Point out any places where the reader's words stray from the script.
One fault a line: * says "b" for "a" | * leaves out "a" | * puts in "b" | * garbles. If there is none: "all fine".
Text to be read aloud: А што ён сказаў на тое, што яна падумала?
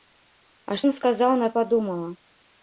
* leaves out "што"
* leaves out "тое што яна"